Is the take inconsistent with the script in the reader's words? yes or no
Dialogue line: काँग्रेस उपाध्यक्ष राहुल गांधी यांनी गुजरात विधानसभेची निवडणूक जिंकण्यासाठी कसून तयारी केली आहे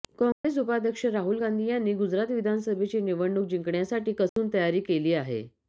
no